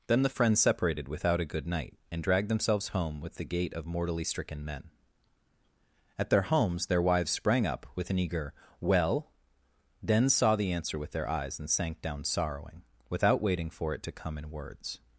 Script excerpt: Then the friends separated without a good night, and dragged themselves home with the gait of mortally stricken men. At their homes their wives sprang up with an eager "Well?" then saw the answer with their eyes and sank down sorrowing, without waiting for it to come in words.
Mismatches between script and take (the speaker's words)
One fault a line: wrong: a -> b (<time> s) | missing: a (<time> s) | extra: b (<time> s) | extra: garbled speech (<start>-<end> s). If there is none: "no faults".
no faults